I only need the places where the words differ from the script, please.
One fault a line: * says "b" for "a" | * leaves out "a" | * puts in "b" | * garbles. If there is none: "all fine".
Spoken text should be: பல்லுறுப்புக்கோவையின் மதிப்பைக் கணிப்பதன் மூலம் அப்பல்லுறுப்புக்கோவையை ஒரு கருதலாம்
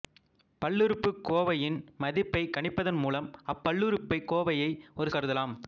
all fine